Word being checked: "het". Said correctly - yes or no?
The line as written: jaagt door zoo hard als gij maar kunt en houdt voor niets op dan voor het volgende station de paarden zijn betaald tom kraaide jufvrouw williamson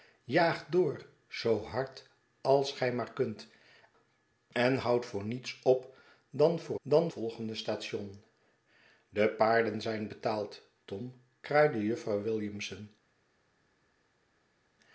no